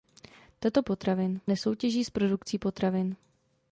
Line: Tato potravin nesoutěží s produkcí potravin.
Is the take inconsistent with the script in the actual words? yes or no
no